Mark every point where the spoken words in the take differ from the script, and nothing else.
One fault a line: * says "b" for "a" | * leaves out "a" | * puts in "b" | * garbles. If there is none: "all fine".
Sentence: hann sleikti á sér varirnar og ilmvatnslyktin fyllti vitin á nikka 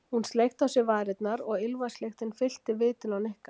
* says "hún" for "hann"